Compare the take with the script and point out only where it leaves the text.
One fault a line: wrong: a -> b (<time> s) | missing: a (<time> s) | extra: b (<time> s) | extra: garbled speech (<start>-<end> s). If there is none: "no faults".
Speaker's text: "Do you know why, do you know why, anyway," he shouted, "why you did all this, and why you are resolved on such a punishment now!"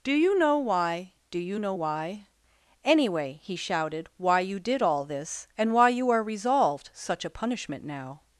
missing: on (6.9 s)